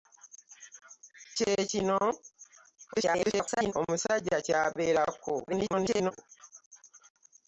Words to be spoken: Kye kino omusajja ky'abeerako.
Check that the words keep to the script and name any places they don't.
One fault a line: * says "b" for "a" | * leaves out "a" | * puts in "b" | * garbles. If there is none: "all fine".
* garbles
* garbles